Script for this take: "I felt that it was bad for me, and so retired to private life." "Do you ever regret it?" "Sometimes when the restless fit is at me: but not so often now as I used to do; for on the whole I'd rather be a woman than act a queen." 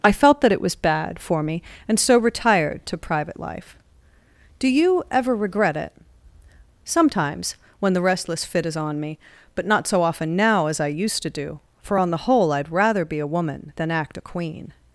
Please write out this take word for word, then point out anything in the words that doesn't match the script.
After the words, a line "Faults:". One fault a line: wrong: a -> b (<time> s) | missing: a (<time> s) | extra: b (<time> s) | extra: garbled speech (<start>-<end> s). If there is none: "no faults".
"I felt that it was bad for me, and so retired to private life." "Do you ever regret it?" "Sometimes when the restless fit is on me: but not so often now as I used to do; for on the whole I'd rather be a woman than act a queen."
Faults:
wrong: at -> on (8.8 s)